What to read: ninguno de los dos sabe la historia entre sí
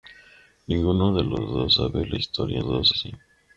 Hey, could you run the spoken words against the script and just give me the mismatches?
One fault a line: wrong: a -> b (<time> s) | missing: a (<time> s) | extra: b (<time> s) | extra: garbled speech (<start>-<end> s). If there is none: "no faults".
wrong: entre -> dos (2.6 s)